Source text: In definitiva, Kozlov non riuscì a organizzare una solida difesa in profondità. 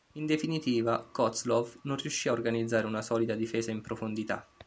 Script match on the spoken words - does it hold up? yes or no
yes